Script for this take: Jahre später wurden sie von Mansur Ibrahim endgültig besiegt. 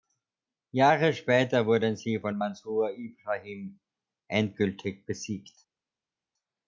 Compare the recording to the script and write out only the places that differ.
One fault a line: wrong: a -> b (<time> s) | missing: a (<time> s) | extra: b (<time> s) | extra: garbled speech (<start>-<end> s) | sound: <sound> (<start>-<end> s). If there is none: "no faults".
no faults